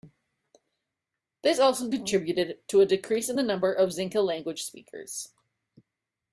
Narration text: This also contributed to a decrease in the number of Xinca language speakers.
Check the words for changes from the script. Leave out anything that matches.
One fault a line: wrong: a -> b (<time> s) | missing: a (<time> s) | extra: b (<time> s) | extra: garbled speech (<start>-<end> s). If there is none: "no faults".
no faults